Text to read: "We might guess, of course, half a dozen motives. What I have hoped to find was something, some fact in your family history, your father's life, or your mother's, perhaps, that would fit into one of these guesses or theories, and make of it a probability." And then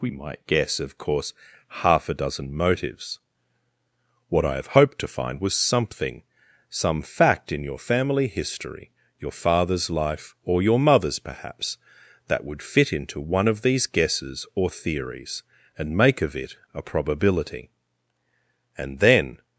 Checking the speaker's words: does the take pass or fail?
pass